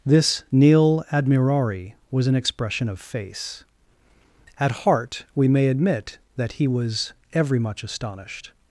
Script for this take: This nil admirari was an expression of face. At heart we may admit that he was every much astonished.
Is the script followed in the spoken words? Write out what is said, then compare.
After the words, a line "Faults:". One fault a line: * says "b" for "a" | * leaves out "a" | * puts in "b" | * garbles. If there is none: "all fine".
This nil admirari was an expression of face. At heart we may admit that he was every much astonished.
Faults:
all fine